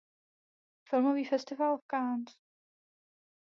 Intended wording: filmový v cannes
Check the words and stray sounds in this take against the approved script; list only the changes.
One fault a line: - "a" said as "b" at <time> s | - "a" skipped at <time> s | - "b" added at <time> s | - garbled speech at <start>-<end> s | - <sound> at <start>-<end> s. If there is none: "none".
- "festival" added at 1.2 s